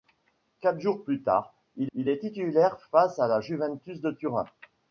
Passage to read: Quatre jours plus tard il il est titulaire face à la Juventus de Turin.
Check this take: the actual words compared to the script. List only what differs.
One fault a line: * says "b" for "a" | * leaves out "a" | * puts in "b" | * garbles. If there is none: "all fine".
all fine